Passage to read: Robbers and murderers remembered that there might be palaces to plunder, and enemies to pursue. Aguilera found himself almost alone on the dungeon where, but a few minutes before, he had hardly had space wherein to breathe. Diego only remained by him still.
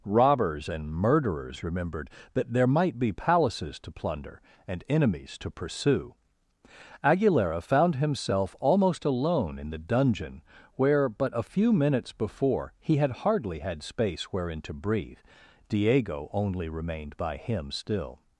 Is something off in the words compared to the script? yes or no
yes